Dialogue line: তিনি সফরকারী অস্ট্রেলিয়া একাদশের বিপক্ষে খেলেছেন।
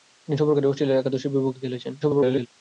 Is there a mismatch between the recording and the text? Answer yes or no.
yes